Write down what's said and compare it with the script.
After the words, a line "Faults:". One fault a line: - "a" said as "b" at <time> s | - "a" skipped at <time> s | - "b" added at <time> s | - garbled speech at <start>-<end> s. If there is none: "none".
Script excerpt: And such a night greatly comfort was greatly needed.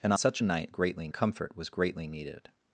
And such a night greatly comfort was greatly needed.
Faults:
none